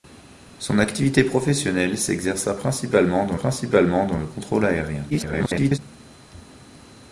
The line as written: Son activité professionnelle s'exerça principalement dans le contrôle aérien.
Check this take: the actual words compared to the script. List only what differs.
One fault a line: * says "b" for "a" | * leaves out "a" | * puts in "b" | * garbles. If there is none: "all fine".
* puts in "principalement dans"
* garbles